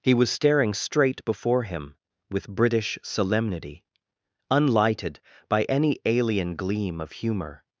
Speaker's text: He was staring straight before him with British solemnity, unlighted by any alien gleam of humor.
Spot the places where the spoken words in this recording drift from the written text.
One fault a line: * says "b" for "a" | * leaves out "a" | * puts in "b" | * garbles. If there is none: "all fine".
all fine